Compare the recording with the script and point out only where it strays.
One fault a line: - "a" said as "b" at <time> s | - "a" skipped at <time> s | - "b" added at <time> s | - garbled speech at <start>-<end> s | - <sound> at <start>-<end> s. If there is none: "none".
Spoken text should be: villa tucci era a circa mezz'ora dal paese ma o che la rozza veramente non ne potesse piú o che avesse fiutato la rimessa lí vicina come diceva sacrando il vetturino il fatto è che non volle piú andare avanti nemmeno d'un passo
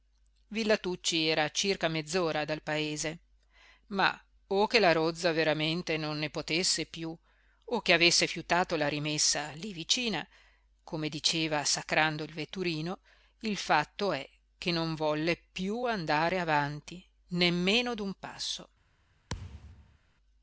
- thud at 19.3-20.0 s